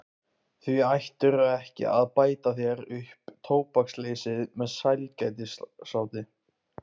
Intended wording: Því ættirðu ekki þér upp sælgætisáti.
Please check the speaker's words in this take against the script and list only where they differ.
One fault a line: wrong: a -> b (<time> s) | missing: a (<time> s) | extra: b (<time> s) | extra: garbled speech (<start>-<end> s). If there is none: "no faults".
extra: að bæta (1.9 s)
extra: tóbaksleysið með (3.5 s)